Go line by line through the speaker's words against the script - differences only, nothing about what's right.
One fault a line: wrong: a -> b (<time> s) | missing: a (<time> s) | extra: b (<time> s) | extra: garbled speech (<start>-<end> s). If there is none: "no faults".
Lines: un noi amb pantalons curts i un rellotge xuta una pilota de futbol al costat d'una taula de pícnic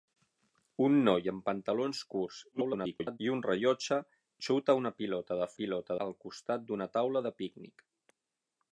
extra: garbled speech (2.5-3.2 s)
wrong: futbol -> pilota (5.6 s)